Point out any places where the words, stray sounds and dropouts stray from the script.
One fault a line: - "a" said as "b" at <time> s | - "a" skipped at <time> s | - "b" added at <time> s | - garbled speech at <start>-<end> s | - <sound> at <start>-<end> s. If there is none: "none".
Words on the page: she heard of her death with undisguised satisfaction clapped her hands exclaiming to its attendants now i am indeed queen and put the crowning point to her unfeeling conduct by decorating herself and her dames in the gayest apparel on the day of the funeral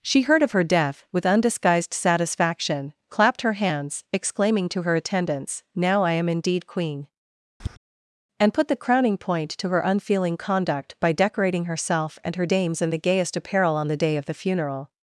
- "its" said as "her" at 4.8 s
- tap at 7.6-7.8 s